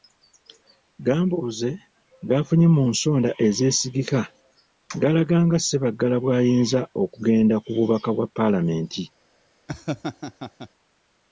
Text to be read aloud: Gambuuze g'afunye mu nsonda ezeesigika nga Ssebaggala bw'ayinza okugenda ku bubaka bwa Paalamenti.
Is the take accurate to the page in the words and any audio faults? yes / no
no